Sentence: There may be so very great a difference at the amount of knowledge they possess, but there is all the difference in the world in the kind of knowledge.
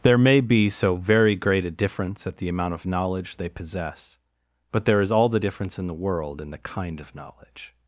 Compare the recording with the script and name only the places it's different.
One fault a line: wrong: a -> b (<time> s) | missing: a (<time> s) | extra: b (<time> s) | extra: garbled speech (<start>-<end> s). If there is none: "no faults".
no faults